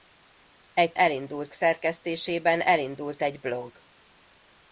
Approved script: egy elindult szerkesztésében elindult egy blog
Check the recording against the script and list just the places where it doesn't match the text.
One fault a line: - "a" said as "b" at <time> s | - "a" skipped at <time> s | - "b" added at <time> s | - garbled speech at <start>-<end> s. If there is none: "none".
none